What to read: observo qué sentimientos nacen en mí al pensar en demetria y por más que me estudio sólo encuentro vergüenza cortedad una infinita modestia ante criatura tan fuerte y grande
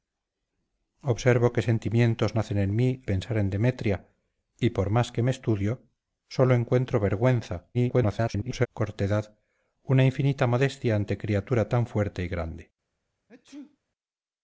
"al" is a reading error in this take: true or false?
true